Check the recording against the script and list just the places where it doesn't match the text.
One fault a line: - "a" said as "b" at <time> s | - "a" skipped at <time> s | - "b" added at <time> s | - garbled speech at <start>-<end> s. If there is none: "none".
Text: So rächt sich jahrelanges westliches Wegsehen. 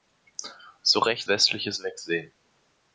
- "sich jahrelanges" skipped at 1.3 s